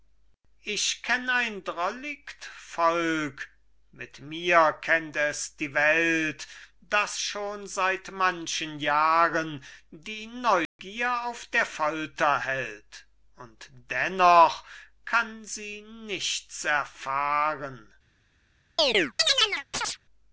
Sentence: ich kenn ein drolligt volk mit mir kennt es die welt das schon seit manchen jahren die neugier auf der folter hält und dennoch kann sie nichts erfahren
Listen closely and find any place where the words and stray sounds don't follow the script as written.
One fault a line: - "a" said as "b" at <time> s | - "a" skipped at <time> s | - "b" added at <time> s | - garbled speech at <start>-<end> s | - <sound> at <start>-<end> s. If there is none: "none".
- dropout at 10.7-10.8 s
- chirp at 18.8-20.0 s